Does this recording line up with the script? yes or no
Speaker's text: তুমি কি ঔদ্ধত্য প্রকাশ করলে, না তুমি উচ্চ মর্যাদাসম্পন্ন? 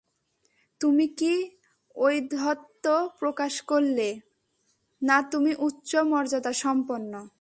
yes